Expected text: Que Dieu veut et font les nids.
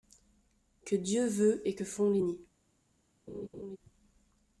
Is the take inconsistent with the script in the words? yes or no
yes